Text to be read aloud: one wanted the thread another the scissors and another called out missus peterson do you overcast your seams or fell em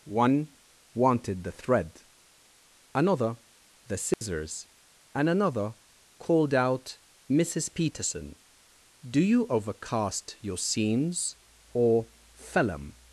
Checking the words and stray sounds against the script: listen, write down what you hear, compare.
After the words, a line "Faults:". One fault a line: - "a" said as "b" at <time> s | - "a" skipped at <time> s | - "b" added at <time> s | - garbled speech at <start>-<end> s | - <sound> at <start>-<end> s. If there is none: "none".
one wanted the thread another the scissors and another called out missus peterson do you overcast your seams or fell em
Faults:
- dropout at 4.1-4.2 s